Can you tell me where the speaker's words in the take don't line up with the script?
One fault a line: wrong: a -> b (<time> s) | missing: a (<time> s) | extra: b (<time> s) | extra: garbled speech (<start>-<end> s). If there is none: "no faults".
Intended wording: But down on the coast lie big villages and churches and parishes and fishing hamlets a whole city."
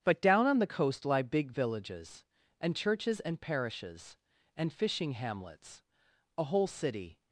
no faults